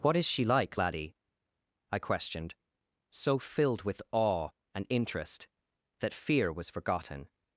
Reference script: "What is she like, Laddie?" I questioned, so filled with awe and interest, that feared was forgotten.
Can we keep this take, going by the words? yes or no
no